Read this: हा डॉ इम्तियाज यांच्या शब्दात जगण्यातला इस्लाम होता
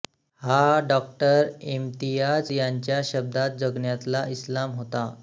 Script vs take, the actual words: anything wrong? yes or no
no